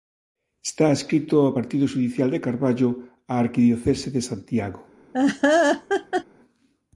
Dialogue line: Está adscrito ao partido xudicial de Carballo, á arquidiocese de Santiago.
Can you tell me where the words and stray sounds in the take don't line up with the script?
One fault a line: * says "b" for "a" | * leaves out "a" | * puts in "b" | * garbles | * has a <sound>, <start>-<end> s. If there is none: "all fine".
* has a laugh, 5.1-6.2 s